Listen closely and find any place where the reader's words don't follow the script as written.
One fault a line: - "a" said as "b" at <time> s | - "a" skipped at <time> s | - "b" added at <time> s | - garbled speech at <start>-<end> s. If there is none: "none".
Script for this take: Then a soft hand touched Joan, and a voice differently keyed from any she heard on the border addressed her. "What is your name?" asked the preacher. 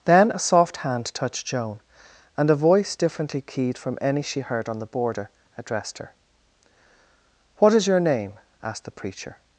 none